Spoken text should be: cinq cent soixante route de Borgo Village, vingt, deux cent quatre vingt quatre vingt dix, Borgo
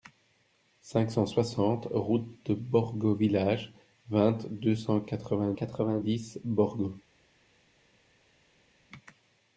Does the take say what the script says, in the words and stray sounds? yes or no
yes